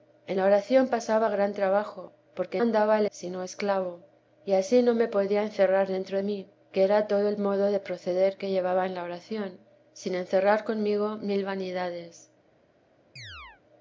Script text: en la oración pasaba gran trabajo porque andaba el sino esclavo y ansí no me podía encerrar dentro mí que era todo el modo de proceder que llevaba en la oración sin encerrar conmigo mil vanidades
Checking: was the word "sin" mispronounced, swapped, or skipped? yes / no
no